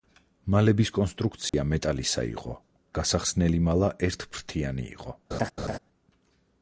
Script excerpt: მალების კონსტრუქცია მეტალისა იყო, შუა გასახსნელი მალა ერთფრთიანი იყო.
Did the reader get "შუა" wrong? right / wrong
wrong